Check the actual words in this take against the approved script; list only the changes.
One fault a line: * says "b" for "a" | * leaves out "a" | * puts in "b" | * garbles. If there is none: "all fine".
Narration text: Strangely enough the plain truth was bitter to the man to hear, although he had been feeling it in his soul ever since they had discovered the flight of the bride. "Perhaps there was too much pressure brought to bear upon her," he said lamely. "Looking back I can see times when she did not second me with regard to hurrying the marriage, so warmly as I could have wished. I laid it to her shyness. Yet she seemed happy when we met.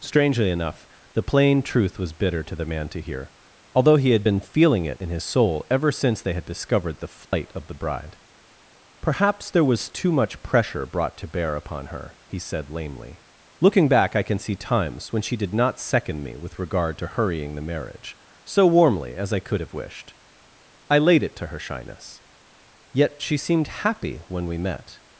all fine